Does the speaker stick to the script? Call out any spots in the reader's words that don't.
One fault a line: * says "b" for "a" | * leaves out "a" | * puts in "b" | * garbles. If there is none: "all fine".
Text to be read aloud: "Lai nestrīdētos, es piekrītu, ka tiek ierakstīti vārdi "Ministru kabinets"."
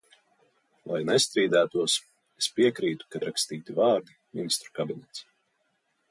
* leaves out "tiek"